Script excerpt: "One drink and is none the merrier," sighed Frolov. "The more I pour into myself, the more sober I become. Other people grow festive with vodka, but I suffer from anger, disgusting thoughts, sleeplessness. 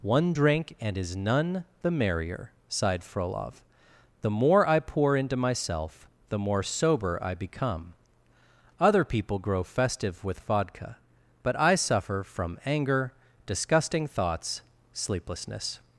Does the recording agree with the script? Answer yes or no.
yes